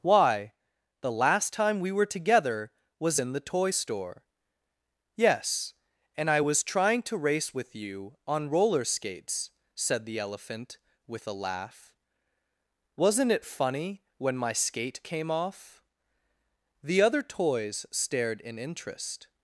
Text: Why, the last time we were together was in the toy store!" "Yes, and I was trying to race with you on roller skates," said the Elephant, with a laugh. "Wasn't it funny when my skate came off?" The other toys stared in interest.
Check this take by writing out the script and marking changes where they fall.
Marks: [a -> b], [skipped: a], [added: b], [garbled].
Why, the last time we were together was in the toy store!" "Yes, and I was trying to race with you on roller skates," said the Elephant, with a laugh. "Wasn't it funny when my skate came off?" The other toys stared in interest.